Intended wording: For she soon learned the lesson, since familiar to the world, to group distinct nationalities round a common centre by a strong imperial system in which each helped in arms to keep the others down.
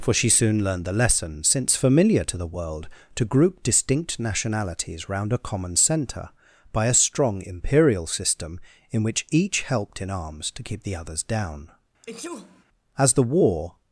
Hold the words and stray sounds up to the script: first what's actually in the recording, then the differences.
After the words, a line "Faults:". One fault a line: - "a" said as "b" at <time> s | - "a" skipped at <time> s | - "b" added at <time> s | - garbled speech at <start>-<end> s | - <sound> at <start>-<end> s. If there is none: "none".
For she soon learned the lesson, since familiar to the world, to group distinct nationalities round a common centre by a strong imperial system in which each helped in arms to keep the others down. As the war
Faults:
- sneeze at 12.0-12.6 s
- "As the war" added at 13.0 s